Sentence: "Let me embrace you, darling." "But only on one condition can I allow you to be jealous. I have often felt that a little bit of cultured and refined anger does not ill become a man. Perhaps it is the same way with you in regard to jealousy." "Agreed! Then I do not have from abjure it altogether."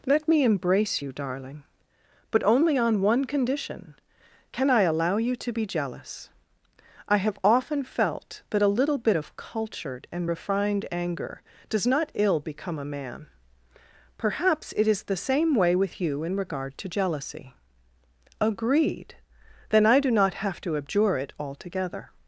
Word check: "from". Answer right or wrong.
wrong